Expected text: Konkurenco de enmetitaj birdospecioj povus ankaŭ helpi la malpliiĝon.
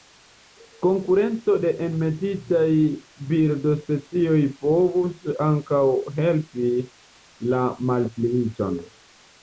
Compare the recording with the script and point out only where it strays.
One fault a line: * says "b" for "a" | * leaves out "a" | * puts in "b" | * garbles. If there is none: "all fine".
all fine